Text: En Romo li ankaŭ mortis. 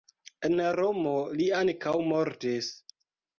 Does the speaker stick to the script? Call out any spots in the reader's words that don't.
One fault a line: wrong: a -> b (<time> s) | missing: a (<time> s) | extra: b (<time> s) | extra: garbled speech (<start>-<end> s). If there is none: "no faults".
no faults